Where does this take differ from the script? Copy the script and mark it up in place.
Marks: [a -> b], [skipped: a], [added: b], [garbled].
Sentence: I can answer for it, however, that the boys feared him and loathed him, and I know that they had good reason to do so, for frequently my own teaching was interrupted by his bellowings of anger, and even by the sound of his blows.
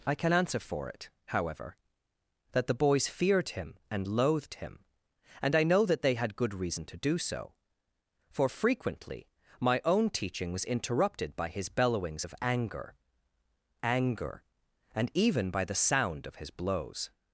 I can answer for it, however, that the boys feared him and loathed him, and I know that they had good reason to do so, for frequently my own teaching was interrupted by his bellowings of anger, [added: anger] and even by the sound of his blows.